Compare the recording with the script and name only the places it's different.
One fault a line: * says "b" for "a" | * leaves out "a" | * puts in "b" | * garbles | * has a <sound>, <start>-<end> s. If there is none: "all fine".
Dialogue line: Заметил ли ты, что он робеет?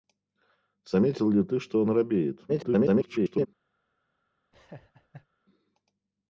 * garbles
* has a laugh, 4.5-5.3 s